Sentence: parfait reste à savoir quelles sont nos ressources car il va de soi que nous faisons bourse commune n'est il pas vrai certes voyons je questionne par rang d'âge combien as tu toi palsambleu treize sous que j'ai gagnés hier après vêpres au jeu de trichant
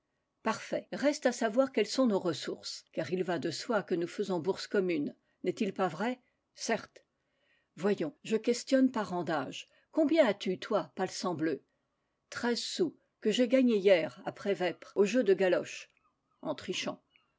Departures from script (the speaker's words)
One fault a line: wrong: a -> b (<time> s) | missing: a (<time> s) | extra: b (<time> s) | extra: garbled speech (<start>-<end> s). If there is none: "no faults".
extra: galoche en (15.3 s)